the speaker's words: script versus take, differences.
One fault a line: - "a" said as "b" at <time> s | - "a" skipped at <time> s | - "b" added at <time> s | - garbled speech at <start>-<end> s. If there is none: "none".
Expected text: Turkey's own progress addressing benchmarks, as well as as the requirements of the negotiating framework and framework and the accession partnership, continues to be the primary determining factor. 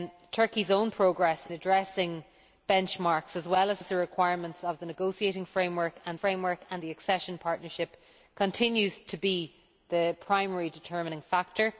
none